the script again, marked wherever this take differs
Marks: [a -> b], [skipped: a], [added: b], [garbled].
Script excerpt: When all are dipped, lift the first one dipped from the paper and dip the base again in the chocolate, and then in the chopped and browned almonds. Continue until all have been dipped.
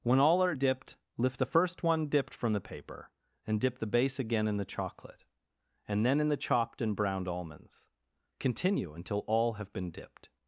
When all are dipped, lift the first one dipped from the paper and dip the base again in the chocolate, and then in the chopped and browned almonds. Continue until all have been dipped.